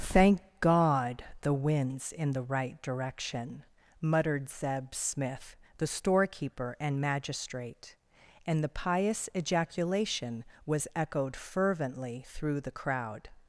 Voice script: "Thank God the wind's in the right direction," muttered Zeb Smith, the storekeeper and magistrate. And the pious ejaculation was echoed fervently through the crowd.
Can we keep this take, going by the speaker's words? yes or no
yes